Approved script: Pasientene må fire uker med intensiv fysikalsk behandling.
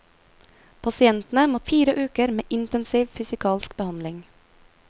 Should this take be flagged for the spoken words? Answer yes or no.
no